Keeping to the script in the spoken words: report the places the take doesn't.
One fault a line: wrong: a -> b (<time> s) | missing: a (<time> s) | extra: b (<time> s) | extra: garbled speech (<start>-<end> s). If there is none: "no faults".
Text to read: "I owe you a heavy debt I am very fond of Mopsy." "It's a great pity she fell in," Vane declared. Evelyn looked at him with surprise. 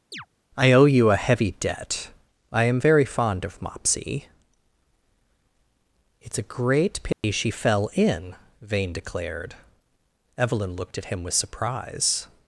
no faults